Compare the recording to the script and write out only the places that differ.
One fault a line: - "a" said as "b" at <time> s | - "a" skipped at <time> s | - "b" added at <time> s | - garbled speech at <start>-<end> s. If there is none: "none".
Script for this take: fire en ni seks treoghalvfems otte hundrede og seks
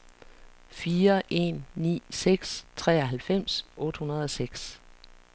none